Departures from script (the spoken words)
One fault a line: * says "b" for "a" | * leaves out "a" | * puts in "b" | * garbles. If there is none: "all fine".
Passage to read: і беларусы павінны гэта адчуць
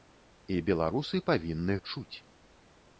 * leaves out "гэта"